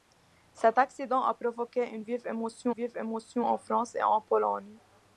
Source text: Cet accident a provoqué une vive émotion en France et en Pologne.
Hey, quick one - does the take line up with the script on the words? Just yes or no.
no